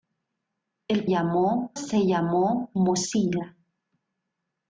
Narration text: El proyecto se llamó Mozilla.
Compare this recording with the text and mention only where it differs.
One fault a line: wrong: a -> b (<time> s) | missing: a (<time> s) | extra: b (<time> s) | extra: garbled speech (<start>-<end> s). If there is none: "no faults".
wrong: proyecto -> llamó (1.1 s)